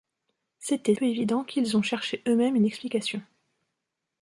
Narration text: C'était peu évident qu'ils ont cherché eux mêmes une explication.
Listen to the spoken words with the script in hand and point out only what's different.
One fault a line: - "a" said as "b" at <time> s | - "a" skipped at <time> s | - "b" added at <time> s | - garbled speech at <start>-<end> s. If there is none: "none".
none